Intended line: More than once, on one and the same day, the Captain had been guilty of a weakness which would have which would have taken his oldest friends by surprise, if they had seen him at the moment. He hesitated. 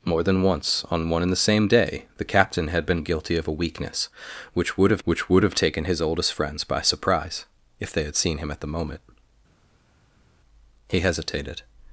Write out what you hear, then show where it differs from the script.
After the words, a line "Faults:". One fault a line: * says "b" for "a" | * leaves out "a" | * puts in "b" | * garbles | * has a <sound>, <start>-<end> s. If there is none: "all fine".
More than once, on one and the same day, the Captain had been guilty of a weakness which would have which would have taken his oldest friends by surprise, if they had seen him at the moment. He hesitated.
Faults:
all fine